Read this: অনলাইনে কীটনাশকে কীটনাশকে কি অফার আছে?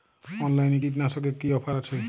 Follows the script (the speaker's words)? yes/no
no